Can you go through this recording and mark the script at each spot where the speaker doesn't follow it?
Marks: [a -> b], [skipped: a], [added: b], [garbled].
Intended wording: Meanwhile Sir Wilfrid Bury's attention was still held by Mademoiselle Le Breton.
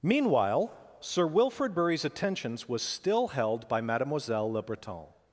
Meanwhile Sir Wilfrid Bury's [attention -> attentions] was still held by Mademoiselle Le Breton.